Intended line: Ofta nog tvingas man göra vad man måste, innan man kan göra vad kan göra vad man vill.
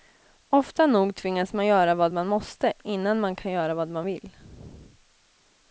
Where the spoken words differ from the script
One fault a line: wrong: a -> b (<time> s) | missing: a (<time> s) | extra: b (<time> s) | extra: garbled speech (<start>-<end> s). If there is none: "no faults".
missing: kan göra vad (3.9 s)